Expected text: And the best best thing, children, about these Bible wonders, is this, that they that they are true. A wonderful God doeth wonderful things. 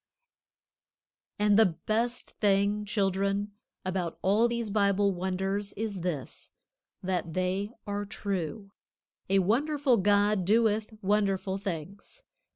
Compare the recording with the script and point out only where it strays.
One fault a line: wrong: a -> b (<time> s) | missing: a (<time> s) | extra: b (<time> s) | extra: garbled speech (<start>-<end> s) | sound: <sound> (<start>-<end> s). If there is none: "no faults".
missing: best (2.3 s)
extra: all (4.2 s)
missing: that they (7.7 s)